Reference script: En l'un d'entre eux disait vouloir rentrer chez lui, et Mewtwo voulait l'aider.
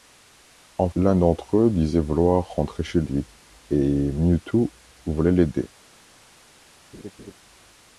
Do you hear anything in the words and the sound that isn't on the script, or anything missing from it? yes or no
yes